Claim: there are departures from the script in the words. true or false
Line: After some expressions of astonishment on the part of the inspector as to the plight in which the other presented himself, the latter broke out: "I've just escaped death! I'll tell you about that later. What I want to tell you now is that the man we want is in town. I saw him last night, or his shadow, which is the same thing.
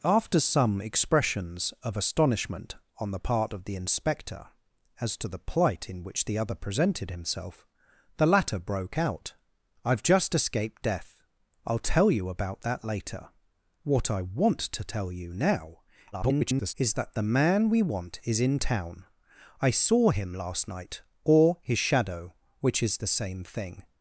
true